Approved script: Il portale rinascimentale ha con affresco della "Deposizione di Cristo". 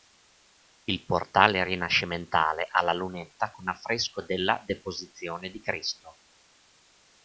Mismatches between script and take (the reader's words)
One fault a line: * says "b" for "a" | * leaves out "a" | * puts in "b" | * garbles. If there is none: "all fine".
* puts in "la lunetta"